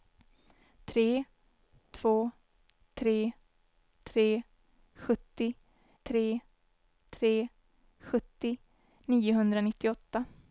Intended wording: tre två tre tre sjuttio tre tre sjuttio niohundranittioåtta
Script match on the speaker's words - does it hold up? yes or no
yes